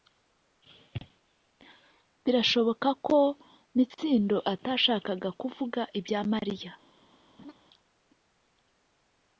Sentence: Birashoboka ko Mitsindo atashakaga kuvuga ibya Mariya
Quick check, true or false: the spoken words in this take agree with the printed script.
true